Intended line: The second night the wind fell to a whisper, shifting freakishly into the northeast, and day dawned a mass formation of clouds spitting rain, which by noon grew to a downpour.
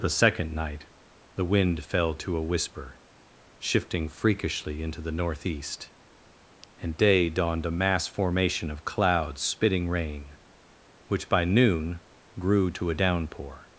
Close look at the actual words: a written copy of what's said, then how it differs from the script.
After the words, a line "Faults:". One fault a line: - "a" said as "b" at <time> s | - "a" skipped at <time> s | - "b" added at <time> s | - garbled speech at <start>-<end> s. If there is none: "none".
The second night the wind fell to a whisper, shifting freakishly into the northeast, and day dawned a mass formation of clouds spitting rain, which by noon grew to a downpour.
Faults:
none